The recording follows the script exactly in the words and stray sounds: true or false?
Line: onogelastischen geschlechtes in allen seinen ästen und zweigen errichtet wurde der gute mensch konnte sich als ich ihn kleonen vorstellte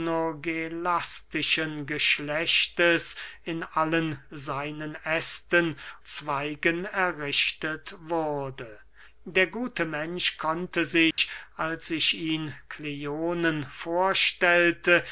false